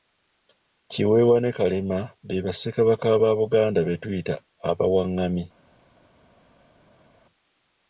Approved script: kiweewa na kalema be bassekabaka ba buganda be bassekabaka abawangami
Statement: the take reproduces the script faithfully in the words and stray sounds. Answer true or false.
false